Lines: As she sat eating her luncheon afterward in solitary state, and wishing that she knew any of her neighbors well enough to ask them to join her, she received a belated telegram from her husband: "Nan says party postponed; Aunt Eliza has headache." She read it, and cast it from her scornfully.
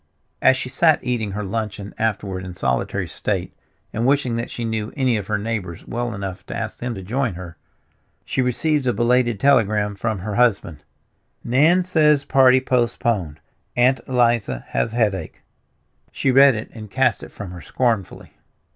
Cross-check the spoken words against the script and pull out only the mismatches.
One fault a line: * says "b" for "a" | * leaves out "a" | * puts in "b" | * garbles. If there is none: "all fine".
all fine